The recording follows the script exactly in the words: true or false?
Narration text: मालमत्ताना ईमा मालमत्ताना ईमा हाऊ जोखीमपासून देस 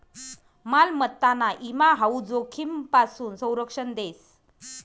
false